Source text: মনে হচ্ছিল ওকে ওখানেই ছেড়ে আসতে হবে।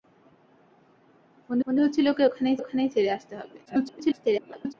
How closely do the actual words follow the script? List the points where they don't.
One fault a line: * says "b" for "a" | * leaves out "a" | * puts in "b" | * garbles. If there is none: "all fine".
* puts in "মনে"
* puts in "ওখানেই"
* garbles